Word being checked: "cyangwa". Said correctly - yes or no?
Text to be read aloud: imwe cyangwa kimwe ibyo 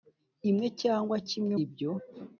yes